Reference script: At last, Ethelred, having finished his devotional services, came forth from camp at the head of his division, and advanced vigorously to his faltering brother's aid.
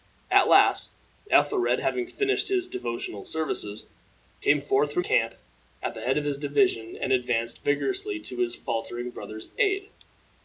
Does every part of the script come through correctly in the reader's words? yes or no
yes